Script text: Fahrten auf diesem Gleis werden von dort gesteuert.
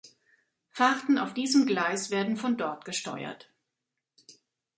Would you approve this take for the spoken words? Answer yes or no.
yes